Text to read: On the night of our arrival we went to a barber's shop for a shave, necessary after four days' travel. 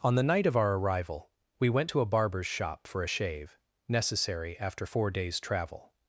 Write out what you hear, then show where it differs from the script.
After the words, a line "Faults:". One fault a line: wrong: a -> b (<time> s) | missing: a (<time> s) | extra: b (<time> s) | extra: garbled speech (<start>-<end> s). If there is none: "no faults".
On the night of our arrival we went to a barber's shop for a shave, necessary after four days' travel.
Faults:
no faults